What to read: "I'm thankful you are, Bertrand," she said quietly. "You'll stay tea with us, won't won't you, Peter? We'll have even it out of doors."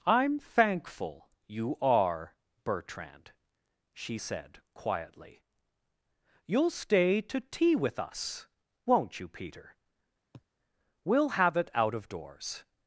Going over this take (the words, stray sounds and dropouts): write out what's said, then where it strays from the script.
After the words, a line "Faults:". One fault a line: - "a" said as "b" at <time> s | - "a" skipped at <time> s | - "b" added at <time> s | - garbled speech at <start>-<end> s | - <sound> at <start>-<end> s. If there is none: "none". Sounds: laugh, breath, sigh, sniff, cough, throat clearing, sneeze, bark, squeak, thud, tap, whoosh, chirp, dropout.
"I'm thankful you are, Bertrand," she said quietly. "You'll stay to tea with us, won't you, Peter? We'll have it out of doors."
Faults:
- "to" added at 7.2 s
- "won't" skipped at 9.2 s
- sniff at 10.3-10.5 s
- "even" skipped at 11.6 s